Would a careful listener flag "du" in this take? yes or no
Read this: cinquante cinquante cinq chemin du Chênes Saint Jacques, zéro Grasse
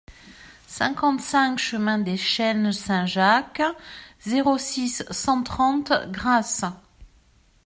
yes